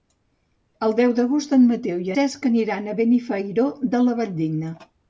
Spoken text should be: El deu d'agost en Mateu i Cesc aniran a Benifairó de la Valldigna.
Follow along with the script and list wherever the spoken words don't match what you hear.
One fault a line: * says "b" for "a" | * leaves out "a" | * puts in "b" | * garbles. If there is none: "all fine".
all fine